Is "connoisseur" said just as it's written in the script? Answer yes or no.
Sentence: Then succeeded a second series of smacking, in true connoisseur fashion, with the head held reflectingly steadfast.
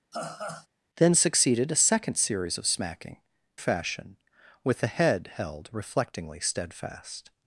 no